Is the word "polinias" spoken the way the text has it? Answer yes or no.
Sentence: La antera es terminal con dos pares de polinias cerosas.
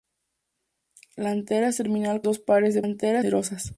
no